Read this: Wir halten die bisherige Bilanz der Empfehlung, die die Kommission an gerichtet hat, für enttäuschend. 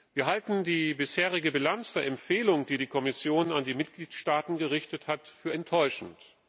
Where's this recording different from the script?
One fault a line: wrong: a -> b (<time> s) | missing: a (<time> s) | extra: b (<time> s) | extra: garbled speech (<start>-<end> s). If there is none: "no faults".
extra: die Mitgliedstaaten (3.6 s)